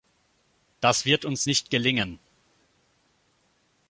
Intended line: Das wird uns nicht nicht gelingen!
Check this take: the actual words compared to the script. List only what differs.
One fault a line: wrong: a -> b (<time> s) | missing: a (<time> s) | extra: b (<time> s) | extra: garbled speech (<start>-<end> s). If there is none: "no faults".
missing: nicht (1.7 s)